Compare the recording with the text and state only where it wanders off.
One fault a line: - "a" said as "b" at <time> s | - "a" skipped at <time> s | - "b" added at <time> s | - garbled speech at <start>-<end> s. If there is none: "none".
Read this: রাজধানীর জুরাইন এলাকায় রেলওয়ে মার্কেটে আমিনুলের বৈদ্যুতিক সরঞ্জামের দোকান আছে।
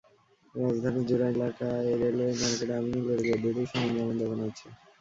none